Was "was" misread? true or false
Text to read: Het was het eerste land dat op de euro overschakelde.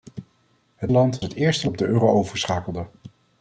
true